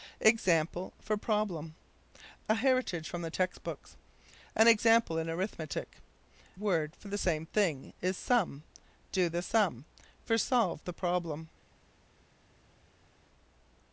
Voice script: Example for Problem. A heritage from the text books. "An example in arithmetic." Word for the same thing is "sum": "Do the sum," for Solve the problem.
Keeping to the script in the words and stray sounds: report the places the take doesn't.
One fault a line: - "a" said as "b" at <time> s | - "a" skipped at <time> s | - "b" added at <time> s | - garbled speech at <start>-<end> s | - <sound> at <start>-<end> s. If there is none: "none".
none